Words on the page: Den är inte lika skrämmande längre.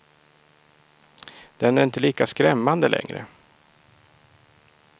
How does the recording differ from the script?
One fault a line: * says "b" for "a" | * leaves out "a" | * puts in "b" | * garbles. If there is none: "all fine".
all fine